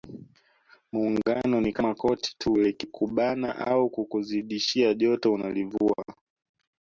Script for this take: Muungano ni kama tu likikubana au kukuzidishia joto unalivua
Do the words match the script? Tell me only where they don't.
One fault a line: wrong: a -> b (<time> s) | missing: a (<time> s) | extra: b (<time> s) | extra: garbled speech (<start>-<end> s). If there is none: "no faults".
extra: koti (1.9 s)